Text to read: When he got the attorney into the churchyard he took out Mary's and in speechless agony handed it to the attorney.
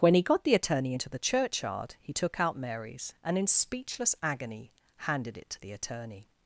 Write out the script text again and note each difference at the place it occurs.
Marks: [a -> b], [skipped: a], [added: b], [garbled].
When he got the attorney into the churchyard he took out Mary's and in speechless agony handed it to the attorney.